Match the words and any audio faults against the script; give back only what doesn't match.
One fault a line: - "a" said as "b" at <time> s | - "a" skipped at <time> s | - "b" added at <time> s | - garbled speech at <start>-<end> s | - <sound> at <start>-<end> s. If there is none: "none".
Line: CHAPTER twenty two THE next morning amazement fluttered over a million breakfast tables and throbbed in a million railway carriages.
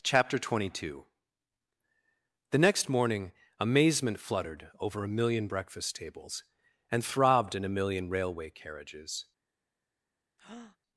- breath at 10.4-10.8 s